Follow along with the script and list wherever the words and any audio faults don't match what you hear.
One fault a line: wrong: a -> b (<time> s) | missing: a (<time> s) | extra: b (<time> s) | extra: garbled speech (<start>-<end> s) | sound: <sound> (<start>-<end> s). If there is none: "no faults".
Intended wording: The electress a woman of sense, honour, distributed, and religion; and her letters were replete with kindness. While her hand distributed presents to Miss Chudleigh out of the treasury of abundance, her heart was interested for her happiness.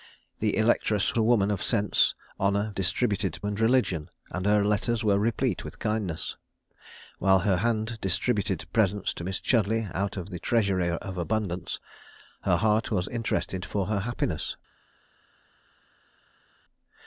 no faults